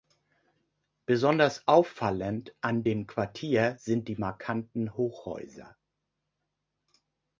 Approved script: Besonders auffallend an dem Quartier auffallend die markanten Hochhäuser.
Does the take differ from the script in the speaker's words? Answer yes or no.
yes